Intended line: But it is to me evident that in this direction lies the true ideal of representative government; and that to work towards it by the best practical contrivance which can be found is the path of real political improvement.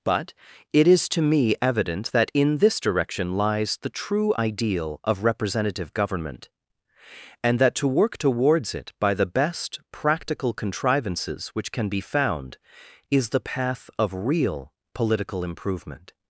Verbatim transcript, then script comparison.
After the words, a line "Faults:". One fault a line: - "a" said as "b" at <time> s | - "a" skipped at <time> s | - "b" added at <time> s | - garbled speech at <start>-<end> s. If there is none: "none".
But it is to me evident that in this direction lies the true ideal of representative government; and that to work towards it by the best practical contrivances which can be found is the path of real political improvement.
Faults:
- "contrivance" said as "contrivances" at 10.5 s